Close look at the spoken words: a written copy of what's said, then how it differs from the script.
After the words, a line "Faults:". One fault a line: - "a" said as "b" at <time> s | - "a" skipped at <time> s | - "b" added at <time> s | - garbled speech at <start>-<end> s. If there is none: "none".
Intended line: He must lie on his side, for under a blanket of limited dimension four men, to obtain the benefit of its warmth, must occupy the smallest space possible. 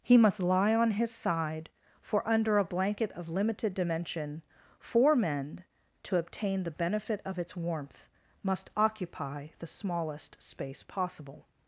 He must lie on his side, for under a blanket of limited dimension four men, to obtain the benefit of its warmth, must occupy the smallest space possible.
Faults:
none